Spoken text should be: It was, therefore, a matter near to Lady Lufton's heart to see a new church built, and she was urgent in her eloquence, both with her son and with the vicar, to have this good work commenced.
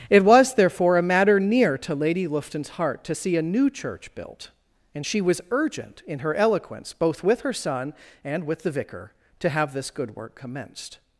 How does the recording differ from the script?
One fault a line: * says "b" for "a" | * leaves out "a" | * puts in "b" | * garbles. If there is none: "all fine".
all fine